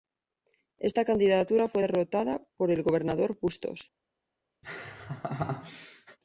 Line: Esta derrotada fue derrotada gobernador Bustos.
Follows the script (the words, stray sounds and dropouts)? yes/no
no